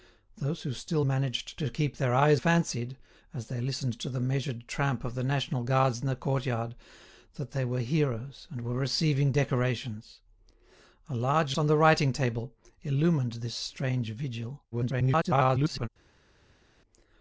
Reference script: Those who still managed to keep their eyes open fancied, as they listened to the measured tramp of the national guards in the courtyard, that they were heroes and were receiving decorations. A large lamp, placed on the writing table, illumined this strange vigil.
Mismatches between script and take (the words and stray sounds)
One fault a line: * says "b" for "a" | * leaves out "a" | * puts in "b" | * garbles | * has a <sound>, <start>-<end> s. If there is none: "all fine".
* leaves out "open"
* leaves out "lamp placed"
* garbles